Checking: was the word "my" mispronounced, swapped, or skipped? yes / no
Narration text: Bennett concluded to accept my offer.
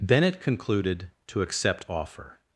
yes